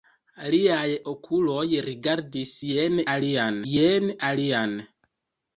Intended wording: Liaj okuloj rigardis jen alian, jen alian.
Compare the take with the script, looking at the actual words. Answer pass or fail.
pass